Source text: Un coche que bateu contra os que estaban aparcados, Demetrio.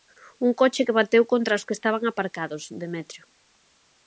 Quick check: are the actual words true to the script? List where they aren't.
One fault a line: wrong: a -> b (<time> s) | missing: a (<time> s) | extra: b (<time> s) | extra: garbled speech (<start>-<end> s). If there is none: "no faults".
no faults